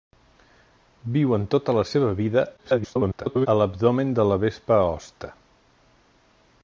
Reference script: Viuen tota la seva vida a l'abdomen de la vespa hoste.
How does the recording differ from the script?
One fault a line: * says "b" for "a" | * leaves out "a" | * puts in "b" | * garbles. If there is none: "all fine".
* garbles